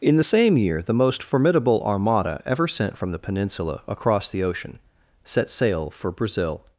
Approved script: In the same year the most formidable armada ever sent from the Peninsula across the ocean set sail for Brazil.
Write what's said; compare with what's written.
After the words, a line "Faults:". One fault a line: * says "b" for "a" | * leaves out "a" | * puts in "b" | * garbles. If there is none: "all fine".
In the same year the most formidable armada ever sent from the Peninsula across the ocean set sail for Brazil.
Faults:
all fine